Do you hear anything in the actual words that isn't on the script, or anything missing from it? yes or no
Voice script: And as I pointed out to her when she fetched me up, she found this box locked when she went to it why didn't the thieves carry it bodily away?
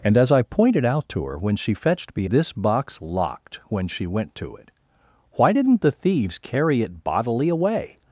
yes